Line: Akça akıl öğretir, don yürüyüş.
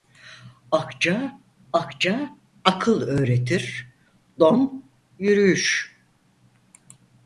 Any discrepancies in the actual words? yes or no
yes